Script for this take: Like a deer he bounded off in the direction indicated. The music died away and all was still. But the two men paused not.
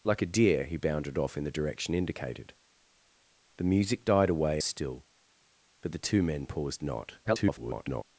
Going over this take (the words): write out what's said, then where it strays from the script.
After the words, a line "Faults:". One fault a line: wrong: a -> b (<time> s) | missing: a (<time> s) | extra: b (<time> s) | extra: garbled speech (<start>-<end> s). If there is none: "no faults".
Like a deer he bounded off in the direction indicated. The music died away still. But the two men paused not. [garbled]
Faults:
missing: and all was (4.6 s)
extra: garbled speech (7.2-8.0 s)